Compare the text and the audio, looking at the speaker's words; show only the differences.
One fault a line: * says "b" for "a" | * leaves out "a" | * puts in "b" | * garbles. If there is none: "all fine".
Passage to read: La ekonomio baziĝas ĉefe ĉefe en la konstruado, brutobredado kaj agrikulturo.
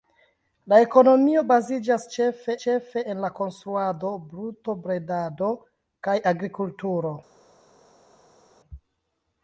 all fine